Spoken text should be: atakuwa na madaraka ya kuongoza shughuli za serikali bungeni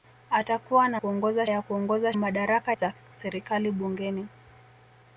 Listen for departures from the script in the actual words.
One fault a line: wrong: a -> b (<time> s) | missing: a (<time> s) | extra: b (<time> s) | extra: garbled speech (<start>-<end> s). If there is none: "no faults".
wrong: madaraka -> kuongoza (1.0 s)
wrong: shughuli -> madaraka (2.2 s)